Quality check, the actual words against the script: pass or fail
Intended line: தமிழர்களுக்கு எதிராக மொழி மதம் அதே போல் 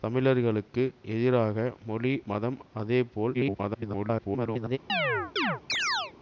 fail